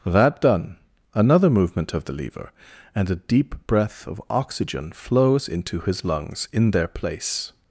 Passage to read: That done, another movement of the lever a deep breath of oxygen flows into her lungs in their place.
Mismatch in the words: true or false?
true